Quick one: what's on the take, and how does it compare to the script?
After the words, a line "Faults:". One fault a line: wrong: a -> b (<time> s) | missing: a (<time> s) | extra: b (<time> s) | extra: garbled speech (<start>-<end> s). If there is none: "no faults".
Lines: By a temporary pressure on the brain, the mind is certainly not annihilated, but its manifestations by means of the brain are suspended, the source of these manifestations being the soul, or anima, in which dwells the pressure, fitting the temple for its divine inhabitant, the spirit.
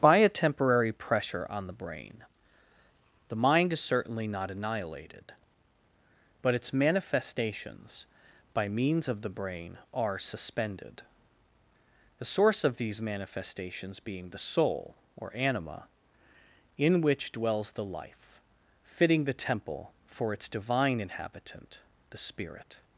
By a temporary pressure on the brain, the mind is certainly not annihilated, but its manifestations by means of the brain are suspended, the source of these manifestations being the soul, or anima, in which dwells the life, fitting the temple for its divine inhabitant, the spirit.
Faults:
wrong: pressure -> life (17.9 s)